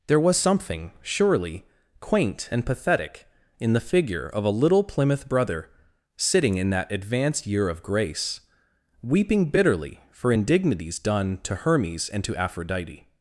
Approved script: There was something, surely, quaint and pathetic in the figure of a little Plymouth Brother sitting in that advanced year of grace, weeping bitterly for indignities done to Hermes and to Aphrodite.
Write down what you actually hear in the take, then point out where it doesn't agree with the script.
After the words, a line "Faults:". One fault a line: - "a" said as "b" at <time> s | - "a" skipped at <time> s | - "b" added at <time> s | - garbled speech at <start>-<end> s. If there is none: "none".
There was something, surely, quaint and pathetic in the figure of a little Plymouth Brother sitting in that advanced year of grace, weeping bitterly for indignities done to Hermes and to Aphrodite.
Faults:
none